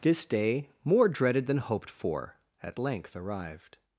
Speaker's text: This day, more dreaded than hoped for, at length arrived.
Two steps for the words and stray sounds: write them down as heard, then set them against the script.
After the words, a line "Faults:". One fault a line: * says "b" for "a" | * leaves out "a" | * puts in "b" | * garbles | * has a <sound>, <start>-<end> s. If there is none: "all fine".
This day, more dreaded than hoped for, at length arrived.
Faults:
all fine